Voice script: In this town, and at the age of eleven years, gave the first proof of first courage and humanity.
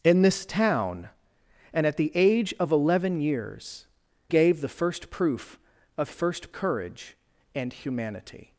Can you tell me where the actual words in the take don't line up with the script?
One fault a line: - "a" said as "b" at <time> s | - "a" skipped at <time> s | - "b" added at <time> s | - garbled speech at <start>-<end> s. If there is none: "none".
none